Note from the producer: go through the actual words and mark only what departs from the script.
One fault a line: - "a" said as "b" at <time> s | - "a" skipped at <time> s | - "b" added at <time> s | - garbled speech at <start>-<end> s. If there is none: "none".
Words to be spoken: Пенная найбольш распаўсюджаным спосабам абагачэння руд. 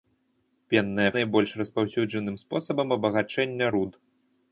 none